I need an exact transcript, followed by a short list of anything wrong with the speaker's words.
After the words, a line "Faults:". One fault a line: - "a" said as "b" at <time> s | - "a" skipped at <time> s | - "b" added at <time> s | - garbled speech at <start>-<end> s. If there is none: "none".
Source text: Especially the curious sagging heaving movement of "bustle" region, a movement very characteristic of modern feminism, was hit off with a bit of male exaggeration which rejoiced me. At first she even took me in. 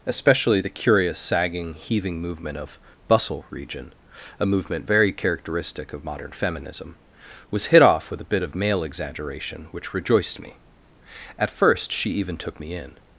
Especially the curious sagging heaving movement of "bustle" region, a movement very characteristic of modern feminism, was hit off with a bit of male exaggeration which rejoiced me. At first she even took me in.
Faults:
none